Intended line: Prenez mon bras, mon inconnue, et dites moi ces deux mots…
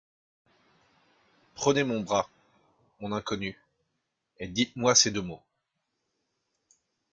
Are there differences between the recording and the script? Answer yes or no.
no